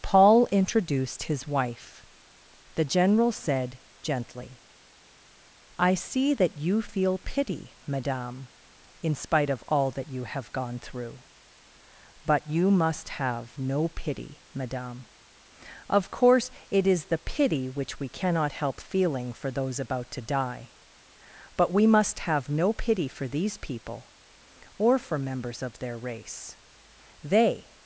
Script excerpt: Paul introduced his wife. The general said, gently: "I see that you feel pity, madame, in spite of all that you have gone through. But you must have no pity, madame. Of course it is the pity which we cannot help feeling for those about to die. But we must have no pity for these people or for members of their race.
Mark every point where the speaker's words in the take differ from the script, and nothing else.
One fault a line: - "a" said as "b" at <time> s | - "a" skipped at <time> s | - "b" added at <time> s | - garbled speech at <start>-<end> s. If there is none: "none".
- "They" added at 27.2 s